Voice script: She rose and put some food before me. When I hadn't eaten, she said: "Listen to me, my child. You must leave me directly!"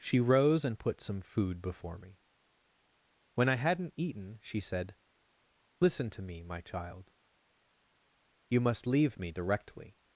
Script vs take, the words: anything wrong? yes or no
no